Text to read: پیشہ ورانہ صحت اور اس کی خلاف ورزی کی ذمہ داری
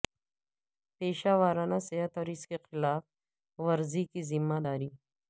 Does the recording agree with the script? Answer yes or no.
yes